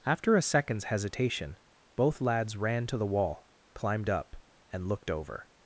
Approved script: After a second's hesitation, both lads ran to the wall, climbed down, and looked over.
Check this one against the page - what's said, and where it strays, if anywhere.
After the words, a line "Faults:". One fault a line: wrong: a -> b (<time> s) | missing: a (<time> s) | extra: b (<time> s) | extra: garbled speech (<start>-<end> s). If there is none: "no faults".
After a second's hesitation, both lads ran to the wall, climbed up, and looked over.
Faults:
wrong: down -> up (4.1 s)